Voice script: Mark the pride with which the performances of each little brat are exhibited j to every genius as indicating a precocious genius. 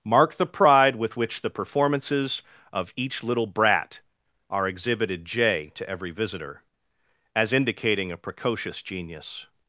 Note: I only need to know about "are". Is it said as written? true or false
true